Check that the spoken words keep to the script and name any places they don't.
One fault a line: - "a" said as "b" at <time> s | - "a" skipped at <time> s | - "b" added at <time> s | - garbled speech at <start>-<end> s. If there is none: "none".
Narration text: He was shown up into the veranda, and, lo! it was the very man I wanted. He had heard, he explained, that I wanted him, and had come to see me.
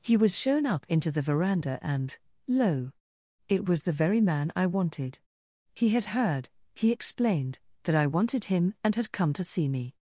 none